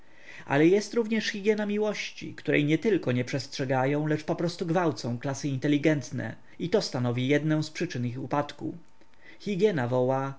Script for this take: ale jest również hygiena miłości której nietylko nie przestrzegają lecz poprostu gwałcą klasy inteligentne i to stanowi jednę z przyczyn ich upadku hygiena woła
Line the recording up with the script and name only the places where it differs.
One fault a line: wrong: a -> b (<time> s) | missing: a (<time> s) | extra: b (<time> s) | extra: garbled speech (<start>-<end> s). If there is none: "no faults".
no faults